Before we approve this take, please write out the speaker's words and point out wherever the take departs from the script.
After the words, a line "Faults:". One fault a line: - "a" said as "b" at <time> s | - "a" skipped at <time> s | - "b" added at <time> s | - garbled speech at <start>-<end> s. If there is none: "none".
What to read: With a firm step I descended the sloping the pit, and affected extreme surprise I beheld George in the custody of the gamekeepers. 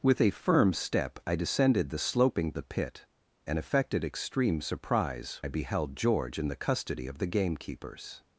With a firm step I descended the sloping the pit, and affected extreme surprise I beheld George in the custody of the gamekeepers.
Faults:
none